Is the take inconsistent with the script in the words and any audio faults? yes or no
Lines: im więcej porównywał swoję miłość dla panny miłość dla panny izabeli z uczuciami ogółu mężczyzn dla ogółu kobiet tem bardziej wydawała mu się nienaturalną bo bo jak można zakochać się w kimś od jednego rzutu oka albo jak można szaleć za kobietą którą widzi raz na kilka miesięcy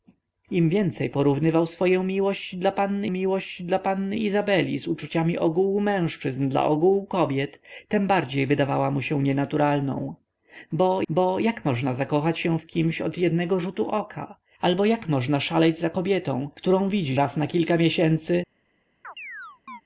yes